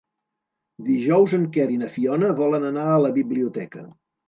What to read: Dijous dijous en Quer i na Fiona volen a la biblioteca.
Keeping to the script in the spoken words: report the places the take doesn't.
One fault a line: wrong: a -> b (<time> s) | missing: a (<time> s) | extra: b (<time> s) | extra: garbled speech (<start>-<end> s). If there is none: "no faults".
missing: dijous (1.4 s)
extra: anar (2.7 s)